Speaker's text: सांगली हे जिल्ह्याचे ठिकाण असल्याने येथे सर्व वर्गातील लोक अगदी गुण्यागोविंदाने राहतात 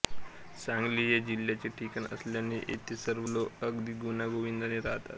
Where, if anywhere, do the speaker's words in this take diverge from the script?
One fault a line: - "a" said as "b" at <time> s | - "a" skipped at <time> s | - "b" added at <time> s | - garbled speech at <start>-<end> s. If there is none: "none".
- "वर्गातील" skipped at 3.3 s